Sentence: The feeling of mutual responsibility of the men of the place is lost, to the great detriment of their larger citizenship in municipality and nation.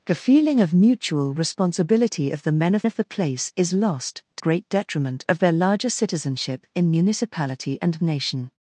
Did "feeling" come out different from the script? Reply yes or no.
no